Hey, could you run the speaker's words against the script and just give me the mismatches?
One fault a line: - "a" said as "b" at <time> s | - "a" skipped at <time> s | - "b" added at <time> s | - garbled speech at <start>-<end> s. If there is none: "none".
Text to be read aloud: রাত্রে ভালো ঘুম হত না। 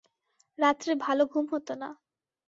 none